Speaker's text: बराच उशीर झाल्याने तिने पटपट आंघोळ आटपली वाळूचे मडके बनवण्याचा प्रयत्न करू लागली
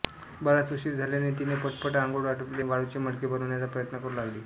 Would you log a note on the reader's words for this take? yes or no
no